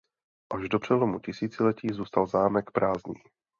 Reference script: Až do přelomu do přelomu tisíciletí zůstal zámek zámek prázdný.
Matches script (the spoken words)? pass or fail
fail